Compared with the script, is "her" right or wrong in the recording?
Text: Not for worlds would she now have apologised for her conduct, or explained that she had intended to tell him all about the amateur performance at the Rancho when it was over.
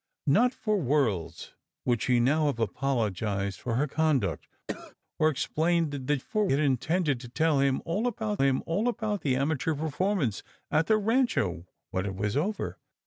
right